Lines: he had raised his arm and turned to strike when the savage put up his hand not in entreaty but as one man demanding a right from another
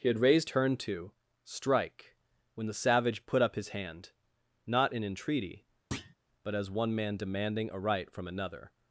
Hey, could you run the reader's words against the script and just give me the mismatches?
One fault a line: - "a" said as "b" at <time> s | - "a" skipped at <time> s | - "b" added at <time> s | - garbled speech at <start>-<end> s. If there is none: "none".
- "his arm and" skipped at 0.5 s